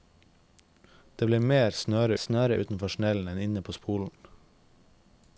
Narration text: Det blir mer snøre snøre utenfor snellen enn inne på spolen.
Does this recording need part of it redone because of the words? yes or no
no